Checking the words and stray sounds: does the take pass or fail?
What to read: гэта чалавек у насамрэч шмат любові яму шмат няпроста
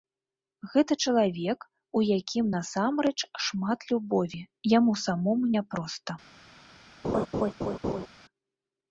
fail